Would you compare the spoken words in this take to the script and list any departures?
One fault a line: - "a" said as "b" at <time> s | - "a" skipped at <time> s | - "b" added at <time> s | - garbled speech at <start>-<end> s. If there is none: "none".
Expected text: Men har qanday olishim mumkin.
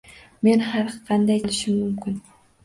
none